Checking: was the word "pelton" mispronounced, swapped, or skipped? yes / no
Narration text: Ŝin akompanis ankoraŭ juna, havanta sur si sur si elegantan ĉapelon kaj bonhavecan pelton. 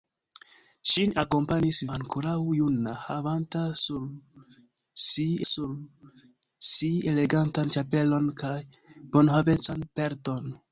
no